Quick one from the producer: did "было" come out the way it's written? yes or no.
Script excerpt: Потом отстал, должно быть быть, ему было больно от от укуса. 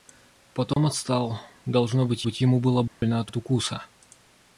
yes